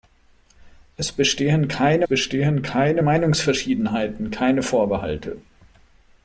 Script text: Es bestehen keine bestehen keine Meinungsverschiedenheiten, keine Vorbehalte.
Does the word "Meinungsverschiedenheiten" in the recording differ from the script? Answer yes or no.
no